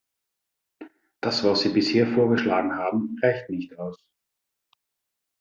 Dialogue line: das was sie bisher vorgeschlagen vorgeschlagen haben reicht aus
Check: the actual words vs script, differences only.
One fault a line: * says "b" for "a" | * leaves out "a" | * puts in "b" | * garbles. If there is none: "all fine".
* leaves out "vorgeschlagen"
* puts in "nicht"